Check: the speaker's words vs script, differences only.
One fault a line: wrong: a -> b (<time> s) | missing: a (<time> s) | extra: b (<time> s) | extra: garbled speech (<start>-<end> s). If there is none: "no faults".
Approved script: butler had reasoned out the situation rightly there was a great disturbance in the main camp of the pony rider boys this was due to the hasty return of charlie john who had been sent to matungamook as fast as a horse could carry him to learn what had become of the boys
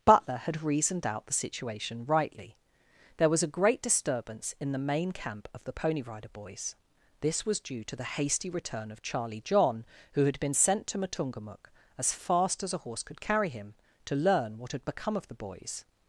no faults